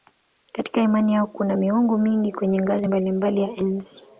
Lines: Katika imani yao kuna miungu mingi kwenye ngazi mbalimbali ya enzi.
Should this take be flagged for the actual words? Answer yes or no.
no